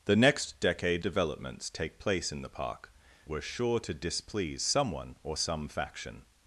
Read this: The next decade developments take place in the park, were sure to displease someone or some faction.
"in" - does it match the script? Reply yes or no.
yes